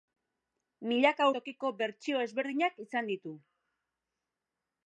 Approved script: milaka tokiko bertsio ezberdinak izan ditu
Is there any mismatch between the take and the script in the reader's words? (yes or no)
no